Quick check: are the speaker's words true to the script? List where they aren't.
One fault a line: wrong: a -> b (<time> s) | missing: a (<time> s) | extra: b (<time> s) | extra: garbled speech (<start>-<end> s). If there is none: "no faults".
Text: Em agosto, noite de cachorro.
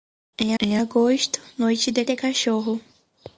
extra: em (0.6 s)
extra: de (2.0 s)